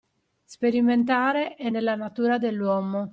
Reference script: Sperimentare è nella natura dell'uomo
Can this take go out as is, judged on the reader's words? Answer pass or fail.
pass